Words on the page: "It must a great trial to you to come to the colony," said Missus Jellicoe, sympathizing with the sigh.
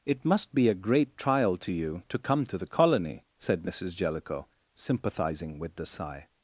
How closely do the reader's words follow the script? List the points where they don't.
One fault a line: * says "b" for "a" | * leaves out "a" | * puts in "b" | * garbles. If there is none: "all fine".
* puts in "be"